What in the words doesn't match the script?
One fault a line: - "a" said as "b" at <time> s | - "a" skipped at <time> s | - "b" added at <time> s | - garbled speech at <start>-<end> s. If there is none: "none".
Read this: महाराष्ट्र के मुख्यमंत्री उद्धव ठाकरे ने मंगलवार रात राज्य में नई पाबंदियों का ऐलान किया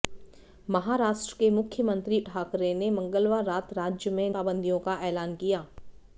- "उद्धव" skipped at 2.2 s
- "नई" skipped at 4.3 s